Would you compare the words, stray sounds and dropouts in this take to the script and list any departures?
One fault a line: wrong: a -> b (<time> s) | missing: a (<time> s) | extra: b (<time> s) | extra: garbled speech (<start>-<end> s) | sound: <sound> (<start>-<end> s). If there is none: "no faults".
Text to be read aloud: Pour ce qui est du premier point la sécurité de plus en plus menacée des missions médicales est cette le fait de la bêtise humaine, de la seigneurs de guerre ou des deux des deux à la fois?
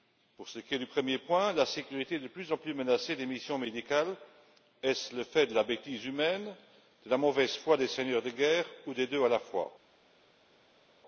wrong: cette -> ce (5.0 s)
extra: mauvaise foi des (7.2 s)
missing: des deux (9.2 s)